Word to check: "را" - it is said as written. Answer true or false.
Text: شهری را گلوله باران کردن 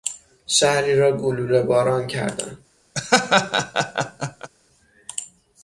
true